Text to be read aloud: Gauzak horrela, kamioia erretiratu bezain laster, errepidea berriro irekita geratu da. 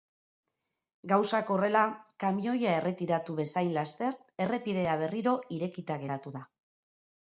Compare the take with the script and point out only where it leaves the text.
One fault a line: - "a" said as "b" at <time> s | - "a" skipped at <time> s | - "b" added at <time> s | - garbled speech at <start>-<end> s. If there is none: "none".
none